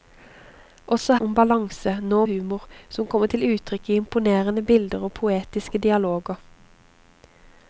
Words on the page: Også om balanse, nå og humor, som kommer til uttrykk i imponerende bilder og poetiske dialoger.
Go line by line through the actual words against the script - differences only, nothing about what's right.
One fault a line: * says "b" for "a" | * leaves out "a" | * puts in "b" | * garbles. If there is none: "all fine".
all fine